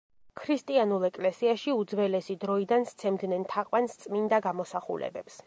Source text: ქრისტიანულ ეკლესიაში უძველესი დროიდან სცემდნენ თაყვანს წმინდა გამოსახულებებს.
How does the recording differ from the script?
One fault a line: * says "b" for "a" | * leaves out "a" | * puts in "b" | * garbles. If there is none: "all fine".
all fine